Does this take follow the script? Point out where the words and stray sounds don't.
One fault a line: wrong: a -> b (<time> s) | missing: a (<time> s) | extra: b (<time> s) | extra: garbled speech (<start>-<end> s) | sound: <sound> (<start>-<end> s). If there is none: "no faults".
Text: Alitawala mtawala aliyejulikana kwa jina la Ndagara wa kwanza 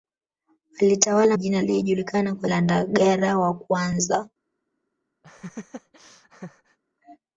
wrong: mtawala -> jina (1.4 s)
missing: jina (2.5 s)
sound: laugh (5.2-6.8 s)